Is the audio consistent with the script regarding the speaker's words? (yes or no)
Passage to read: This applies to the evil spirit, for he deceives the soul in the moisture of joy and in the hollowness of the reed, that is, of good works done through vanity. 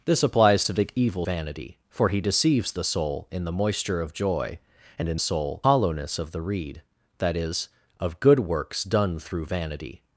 no